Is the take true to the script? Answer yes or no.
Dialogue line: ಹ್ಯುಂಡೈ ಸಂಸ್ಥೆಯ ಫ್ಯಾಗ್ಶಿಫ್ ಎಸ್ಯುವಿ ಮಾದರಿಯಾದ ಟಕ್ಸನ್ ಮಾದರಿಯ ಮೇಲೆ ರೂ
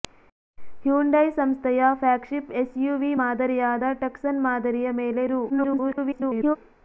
no